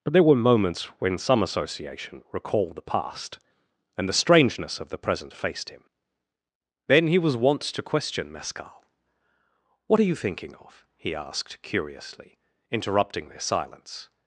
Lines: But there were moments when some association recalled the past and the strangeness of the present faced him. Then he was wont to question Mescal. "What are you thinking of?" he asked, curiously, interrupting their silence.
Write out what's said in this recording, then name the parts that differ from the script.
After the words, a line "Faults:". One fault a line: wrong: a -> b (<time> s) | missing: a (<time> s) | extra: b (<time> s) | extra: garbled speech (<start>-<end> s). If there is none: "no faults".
But there were moments when some association recalled the past and the strangeness of the present faced him. Then he was wont to question Mescal. "What are you thinking of?" he asked, curiously, interrupting their silence.
Faults:
no faults